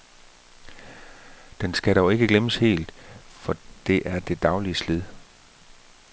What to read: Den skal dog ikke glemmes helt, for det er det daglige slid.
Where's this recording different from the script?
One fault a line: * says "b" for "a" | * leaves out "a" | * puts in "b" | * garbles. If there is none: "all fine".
all fine